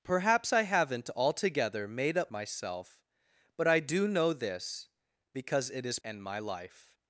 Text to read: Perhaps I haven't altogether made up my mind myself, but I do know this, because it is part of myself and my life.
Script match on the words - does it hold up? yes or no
no